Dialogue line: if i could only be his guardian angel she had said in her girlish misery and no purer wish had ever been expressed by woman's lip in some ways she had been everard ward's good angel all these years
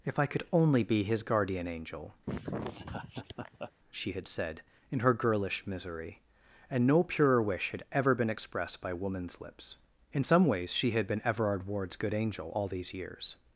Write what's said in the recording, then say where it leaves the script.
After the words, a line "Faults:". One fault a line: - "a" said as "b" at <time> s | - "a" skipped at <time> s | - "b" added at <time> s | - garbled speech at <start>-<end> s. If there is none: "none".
if i could only be his guardian angel she had said in her girlish misery and no purer wish had ever been expressed by woman's lips in some ways she had been everard ward's good angel all these years
Faults:
- "lip" said as "lips" at 9.4 s